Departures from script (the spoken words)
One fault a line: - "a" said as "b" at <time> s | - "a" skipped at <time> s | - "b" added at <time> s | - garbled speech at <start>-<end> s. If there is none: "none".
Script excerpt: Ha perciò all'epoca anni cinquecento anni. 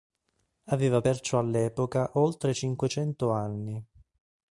- "Ha" said as "Aveva" at 0.7 s
- "anni" said as "oltre" at 2.2 s